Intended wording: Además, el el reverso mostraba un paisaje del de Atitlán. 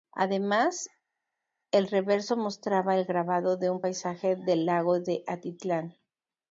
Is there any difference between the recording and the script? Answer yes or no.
yes